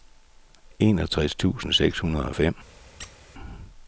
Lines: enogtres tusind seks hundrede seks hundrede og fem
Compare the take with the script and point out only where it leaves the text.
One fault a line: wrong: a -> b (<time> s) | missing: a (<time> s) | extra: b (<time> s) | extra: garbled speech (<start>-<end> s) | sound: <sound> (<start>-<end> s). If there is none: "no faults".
missing: seks hundrede (2.2 s)
sound: squeak (3.0-3.2 s)